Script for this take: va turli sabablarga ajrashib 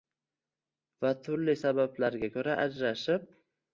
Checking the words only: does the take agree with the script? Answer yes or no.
no